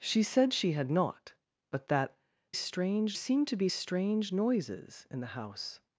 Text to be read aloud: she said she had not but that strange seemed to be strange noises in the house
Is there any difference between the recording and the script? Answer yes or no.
no